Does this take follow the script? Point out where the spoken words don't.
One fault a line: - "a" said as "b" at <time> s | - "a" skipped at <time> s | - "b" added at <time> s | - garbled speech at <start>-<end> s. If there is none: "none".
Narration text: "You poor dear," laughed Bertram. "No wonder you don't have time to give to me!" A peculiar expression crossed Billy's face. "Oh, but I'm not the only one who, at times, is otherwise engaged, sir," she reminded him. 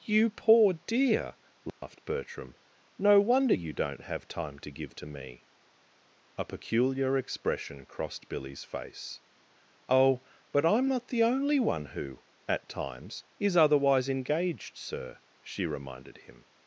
none